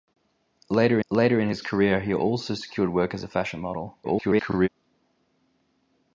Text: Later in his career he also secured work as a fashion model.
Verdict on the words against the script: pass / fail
fail